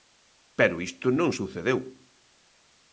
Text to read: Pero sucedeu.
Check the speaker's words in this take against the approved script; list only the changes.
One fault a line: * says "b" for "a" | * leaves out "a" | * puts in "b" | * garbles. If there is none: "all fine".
* puts in "isto non"